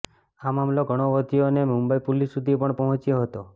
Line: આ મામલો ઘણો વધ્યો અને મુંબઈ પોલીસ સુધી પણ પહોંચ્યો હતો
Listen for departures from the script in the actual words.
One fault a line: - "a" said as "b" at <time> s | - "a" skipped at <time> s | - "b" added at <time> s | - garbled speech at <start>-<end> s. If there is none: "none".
none